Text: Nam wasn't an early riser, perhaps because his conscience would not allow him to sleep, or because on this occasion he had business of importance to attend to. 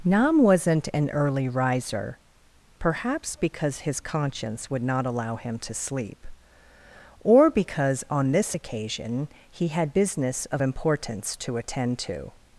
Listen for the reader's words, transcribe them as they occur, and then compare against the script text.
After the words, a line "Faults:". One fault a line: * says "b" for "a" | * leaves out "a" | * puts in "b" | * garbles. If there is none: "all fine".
Nam wasn't an early riser, perhaps because his conscience would not allow him to sleep, or because on this occasion he had business of importance to attend to.
Faults:
all fine